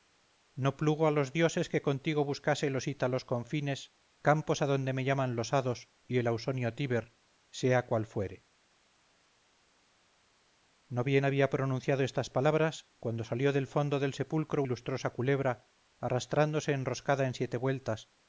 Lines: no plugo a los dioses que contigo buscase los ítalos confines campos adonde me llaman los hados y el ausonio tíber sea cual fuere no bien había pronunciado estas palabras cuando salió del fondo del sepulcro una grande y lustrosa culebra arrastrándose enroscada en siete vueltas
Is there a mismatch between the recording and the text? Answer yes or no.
yes